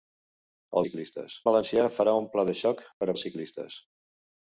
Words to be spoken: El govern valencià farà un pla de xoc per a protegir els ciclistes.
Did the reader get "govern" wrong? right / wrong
wrong